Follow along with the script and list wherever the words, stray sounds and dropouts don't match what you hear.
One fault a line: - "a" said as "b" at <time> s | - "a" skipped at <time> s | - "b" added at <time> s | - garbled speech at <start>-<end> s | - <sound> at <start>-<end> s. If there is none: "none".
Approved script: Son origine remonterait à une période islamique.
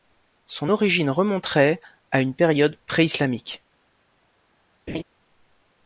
- "pré" added at 2.9 s
- laugh at 4.9-5.0 s